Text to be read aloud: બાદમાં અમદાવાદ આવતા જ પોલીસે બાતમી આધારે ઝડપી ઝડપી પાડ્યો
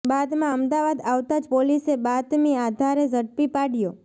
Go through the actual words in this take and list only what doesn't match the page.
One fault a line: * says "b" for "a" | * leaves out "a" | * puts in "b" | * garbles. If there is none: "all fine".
* leaves out "ઝડપી"